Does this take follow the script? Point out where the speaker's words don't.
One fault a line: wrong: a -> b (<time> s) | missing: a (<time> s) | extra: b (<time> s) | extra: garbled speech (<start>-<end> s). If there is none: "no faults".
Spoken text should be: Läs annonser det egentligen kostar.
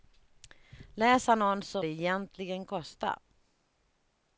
no faults